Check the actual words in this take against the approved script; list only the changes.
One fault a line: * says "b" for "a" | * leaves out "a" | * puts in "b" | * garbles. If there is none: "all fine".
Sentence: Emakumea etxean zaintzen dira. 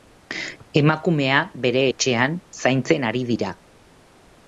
* puts in "bere"
* puts in "ari"